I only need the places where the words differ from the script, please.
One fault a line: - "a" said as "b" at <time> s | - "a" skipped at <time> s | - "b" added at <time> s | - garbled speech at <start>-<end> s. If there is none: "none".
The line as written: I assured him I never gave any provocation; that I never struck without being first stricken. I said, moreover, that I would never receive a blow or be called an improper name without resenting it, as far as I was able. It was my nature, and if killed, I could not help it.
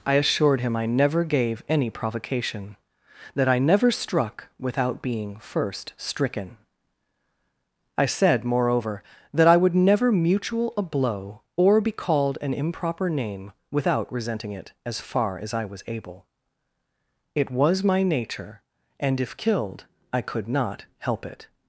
- "receive" said as "mutual" at 10.1 s